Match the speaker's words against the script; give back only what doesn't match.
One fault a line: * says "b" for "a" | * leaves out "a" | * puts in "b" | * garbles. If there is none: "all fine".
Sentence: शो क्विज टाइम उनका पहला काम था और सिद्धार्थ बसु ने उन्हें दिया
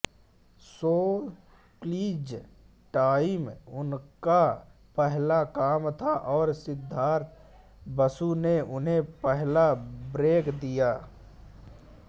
* puts in "पहला ब्रेक"